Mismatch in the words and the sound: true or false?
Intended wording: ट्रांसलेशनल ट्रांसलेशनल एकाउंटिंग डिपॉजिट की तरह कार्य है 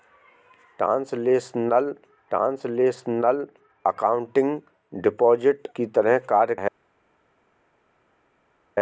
false